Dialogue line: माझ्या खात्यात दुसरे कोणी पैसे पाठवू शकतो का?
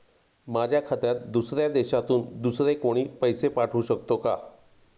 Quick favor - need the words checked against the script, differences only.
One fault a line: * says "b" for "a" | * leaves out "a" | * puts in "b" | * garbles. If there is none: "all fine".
* puts in "दुसऱ्या देशातून"